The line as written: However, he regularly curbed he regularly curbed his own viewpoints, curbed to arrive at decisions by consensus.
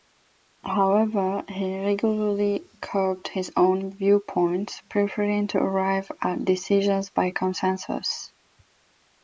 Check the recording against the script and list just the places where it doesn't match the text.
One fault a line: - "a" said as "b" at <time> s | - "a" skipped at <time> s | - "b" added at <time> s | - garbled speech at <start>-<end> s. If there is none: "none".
- "he regularly curbed" skipped at 3.3 s
- "curbed" said as "preferring" at 4.9 s